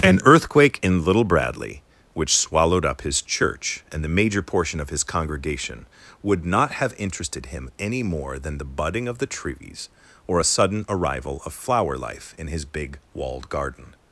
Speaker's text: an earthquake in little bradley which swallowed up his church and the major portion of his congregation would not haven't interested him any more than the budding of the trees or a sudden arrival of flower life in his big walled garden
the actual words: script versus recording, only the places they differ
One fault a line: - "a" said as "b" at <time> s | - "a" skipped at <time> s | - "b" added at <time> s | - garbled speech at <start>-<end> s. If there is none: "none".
- "haven't" said as "have" at 6.7 s